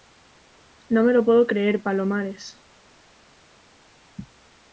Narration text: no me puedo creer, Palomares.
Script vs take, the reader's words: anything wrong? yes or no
yes